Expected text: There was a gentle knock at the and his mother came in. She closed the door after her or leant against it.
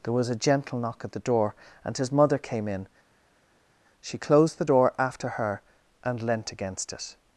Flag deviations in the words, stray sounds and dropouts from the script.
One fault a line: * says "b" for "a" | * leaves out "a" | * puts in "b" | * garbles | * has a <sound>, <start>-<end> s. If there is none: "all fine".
* puts in "door"
* says "and" for "or"